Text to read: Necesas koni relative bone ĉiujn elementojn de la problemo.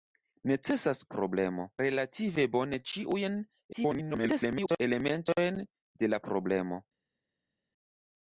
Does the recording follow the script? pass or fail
fail